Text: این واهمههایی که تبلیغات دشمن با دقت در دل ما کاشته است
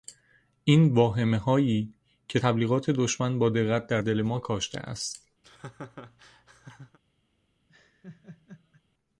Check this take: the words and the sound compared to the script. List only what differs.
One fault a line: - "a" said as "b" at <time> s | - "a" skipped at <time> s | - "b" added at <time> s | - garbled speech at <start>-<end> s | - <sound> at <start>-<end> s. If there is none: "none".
- laugh at 5.4-7.0 s
- laugh at 7.7-8.8 s